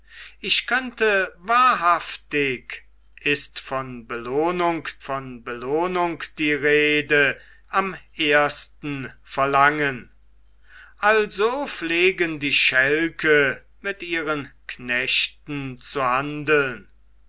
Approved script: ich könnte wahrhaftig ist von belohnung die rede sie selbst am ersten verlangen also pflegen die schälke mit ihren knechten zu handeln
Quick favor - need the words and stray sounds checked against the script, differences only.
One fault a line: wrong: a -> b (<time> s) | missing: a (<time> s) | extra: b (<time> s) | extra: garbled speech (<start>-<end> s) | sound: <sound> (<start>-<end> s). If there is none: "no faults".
extra: von belohnung (5.0 s)
missing: sie selbst (7.4 s)